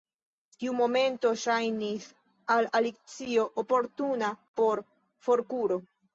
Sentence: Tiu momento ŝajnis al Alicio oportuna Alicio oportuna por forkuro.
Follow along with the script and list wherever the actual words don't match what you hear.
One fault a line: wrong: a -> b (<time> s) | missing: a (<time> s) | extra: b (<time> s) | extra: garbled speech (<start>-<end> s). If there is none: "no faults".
missing: Alicio oportuna (4.3 s)